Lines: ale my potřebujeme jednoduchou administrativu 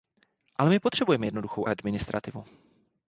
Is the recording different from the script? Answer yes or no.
no